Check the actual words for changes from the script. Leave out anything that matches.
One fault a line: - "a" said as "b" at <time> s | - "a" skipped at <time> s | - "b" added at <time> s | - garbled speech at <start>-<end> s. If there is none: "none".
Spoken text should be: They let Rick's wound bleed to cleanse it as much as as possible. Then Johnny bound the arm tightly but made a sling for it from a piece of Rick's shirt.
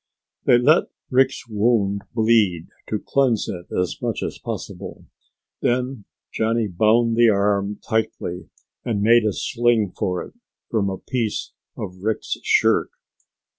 - "as" skipped at 4.4 s
- "but" said as "and" at 8.8 s